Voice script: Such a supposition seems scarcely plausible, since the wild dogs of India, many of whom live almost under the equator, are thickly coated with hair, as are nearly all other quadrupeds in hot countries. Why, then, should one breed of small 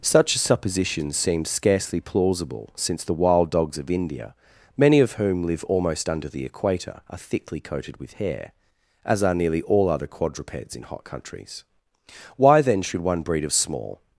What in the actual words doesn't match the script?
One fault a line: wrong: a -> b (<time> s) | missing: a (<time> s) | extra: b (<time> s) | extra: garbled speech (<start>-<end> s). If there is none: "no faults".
no faults